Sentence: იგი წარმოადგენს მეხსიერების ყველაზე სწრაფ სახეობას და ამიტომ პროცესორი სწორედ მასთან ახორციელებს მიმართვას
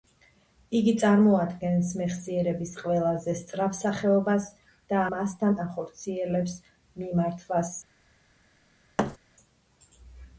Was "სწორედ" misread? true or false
true